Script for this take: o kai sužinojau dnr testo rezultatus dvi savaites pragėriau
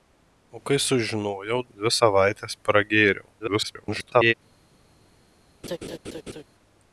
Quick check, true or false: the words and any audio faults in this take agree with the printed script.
false